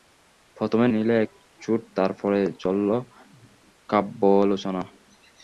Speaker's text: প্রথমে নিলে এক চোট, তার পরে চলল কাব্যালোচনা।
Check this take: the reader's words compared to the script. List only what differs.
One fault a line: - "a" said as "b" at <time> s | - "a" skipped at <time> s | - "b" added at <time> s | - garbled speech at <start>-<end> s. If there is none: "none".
none